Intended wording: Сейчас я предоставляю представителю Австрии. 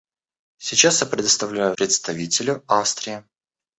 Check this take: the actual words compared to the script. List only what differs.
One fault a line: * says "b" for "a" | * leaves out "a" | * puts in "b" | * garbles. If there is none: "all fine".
all fine